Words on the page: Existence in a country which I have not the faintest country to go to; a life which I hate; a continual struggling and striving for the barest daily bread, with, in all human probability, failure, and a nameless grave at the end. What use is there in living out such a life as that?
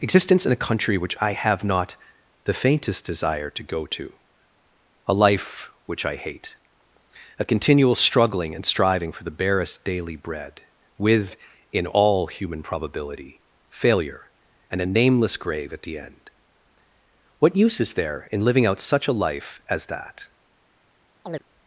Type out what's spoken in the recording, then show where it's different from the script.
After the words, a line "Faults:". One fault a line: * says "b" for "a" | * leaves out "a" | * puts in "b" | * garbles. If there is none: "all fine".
Existence in a country which I have not the faintest desire to go to; a life which I hate; a continual struggling and striving for the barest daily bread, with, in all human probability, failure, and a nameless grave at the end. What use is there in living out such a life as that?
Faults:
* says "desire" for "country"